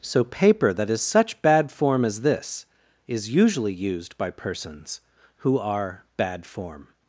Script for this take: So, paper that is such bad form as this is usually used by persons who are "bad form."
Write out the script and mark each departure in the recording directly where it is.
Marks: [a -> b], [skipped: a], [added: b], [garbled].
So, paper that is such bad form as this is usually used by persons who are "bad form."